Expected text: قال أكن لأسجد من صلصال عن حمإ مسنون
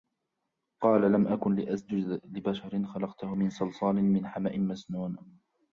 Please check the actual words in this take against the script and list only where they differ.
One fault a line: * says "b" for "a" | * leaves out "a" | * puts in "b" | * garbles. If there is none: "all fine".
* puts in "لم"
* puts in "لبشر خلقته"
* says "من" for "عن"